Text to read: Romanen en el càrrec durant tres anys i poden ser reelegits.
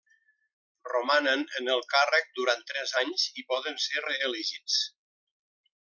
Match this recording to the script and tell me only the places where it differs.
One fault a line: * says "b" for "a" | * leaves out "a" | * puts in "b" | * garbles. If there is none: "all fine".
all fine